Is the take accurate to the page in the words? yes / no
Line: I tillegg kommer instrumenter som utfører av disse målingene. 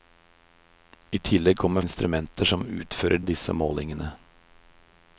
yes